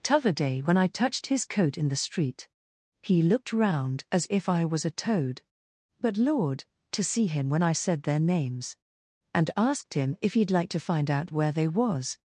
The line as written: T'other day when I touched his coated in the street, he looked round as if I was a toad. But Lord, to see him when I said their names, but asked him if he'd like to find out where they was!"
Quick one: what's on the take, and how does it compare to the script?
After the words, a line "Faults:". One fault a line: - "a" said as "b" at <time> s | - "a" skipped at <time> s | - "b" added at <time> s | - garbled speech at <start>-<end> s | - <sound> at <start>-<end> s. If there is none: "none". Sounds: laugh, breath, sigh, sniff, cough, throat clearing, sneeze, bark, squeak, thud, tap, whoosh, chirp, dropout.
T'other day when I touched his coat in the street, he looked round as if I was a toad. But Lord, to see him when I said their names, and asked him if he'd like to find out where they was!"
Faults:
- "coated" said as "coat" at 1.4 s
- "but" said as "and" at 9.3 s